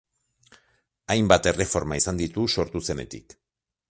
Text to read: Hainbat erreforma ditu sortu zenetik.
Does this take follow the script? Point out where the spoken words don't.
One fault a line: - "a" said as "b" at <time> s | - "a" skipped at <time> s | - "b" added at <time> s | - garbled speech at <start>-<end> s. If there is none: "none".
- "izan" added at 2.0 s